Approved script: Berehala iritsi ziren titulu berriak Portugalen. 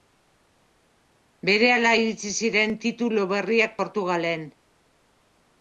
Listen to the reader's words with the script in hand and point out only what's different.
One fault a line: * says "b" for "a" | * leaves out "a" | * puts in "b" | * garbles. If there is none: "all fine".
all fine